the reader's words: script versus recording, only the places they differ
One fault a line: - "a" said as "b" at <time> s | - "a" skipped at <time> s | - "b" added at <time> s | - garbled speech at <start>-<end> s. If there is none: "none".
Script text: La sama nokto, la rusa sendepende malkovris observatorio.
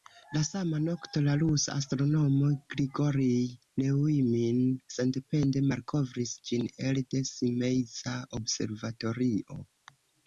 - "astronomo Grigorij Neujmin" added at 1.8 s
- "ĝin elde Simeiza" added at 6.5 s